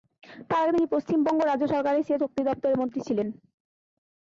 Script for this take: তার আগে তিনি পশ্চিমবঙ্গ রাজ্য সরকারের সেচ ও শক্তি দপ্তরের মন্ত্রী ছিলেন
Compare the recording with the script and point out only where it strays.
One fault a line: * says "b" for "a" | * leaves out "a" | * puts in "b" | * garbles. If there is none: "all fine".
* leaves out "ও"